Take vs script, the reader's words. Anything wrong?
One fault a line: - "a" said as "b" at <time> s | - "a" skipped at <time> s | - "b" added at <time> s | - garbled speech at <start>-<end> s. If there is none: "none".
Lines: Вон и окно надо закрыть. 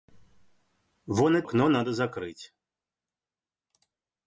none